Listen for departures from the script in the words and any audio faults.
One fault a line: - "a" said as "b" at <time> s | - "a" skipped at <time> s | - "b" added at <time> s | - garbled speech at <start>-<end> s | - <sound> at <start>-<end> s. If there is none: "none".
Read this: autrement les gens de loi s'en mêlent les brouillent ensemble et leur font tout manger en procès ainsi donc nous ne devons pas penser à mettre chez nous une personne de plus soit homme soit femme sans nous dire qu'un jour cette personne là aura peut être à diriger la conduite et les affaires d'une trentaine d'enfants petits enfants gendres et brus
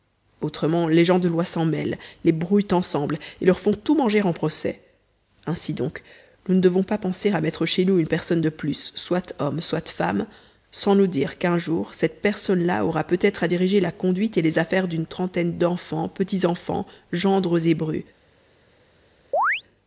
- chirp at 19.3-19.6 s